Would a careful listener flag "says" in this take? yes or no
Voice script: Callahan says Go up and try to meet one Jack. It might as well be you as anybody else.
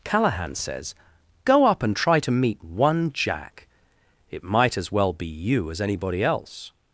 no